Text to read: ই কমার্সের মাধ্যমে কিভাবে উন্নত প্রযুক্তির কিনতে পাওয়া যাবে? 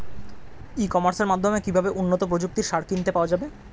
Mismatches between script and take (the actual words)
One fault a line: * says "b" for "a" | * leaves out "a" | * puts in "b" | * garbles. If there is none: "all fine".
* puts in "সার"